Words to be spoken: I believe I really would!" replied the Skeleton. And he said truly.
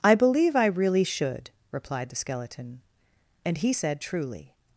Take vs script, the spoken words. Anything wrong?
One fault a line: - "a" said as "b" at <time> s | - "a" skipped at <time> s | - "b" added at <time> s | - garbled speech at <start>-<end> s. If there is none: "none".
- "would" said as "should" at 1.0 s